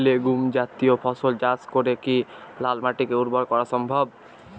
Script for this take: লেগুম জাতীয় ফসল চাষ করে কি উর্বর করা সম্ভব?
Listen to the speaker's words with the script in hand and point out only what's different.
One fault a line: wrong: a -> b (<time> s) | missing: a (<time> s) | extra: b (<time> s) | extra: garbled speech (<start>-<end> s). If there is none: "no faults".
extra: লাল মাটিকে (2.6 s)